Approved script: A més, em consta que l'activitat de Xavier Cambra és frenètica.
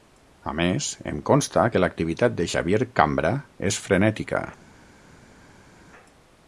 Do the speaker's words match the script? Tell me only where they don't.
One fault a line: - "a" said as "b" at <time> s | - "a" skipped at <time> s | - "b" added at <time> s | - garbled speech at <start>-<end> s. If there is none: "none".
none